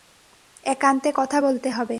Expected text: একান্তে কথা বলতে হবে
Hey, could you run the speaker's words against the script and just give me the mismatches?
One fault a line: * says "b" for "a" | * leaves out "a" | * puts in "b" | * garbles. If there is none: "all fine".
all fine